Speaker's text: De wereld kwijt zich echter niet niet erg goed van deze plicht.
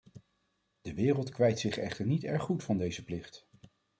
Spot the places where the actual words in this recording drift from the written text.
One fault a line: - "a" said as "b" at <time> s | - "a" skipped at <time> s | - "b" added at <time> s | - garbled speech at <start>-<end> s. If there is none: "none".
- "niet" skipped at 2.2 s